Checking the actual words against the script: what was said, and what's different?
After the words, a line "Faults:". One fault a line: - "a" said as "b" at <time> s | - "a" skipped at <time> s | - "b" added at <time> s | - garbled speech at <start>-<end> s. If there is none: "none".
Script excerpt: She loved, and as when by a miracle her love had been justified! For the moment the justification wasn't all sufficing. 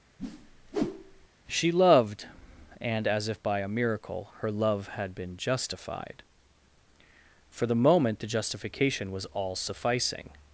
She loved, and as if by a miracle her love had been justified! For the moment the justification was all sufficing.
Faults:
- "when" said as "if" at 3.3 s
- "wasn't" said as "was" at 9.1 s